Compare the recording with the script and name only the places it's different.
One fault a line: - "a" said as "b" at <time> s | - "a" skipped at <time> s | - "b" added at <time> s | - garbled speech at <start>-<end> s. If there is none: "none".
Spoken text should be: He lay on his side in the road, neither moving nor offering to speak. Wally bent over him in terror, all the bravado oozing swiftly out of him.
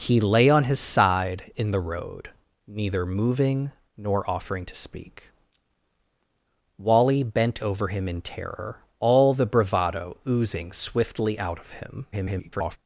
- garbled speech at 12.1-12.8 s